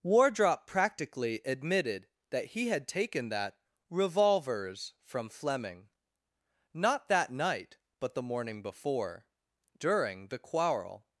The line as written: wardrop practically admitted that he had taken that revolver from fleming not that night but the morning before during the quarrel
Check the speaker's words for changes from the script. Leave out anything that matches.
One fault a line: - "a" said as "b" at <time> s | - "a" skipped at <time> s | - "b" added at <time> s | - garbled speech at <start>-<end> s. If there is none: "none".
- "revolver" said as "revolvers" at 3.9 s